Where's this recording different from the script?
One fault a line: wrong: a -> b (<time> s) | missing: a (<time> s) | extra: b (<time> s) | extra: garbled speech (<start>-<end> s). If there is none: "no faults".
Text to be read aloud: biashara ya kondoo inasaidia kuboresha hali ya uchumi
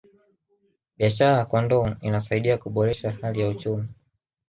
no faults